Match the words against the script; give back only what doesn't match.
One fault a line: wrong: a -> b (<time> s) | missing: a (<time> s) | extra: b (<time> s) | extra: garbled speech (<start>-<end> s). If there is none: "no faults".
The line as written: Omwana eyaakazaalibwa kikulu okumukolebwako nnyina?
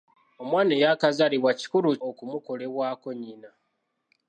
no faults